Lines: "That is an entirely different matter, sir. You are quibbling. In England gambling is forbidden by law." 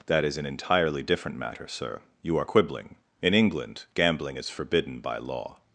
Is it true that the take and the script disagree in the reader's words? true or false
false